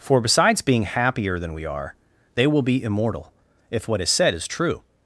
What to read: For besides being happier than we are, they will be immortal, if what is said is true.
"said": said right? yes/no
yes